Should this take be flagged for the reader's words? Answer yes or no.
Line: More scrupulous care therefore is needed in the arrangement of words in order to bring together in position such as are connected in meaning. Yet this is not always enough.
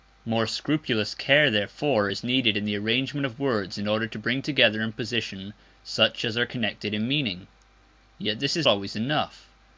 yes